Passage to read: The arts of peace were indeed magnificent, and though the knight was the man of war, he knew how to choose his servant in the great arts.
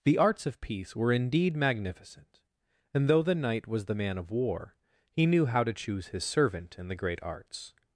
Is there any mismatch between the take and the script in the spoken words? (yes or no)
no